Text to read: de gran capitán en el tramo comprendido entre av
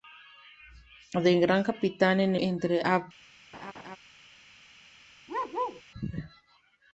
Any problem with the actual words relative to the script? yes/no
yes